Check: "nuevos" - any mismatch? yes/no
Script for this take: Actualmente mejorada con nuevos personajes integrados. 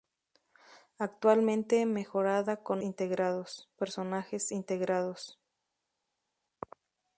yes